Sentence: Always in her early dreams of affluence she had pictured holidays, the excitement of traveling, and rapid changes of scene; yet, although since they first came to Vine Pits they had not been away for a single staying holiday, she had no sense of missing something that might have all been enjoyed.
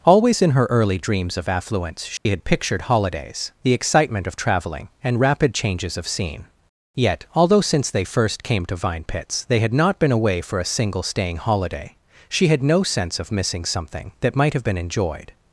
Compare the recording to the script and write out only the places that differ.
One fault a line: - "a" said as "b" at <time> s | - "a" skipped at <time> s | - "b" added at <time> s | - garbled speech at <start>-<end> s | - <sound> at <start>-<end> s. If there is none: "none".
- dropout at 2.2-2.3 s
- "all" skipped at 14.7 s